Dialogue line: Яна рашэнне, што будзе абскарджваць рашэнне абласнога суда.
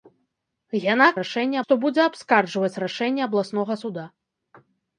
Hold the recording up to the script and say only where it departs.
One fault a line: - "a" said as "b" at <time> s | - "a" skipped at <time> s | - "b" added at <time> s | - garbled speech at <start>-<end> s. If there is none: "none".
none